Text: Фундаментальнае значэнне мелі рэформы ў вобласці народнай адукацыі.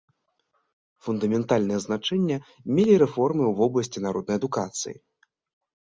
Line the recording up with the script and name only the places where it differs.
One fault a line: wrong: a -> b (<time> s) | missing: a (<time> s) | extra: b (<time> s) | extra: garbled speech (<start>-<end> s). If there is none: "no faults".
no faults